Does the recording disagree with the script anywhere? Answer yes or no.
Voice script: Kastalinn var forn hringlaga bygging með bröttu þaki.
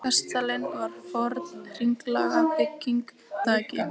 yes